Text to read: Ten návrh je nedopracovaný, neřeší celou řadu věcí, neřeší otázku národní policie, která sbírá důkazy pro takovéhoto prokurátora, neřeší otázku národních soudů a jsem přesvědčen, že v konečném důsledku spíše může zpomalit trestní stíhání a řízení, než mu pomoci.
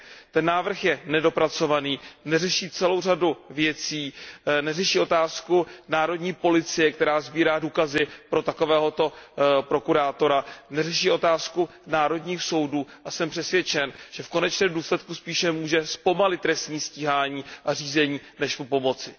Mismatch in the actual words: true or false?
false